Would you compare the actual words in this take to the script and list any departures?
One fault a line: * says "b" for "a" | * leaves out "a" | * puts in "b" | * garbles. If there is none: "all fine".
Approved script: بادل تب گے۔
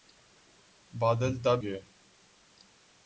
all fine